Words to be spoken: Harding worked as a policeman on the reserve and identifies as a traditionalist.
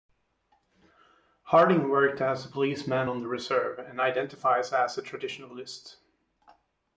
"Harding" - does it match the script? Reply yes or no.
yes